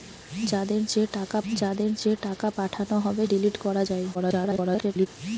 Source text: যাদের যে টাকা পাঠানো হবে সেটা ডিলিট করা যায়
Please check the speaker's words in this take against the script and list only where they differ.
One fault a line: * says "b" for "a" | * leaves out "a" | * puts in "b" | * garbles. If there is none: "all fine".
* puts in "যাদের যে টাকা"
* leaves out "সেটা"
* garbles